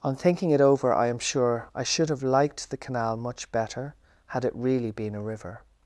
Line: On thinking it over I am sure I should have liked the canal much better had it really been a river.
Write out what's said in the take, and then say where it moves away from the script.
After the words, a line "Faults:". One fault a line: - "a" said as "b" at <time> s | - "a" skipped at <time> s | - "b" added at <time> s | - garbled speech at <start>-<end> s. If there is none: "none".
On thinking it over I am sure I should have liked the canal much better had it really been a river.
Faults:
none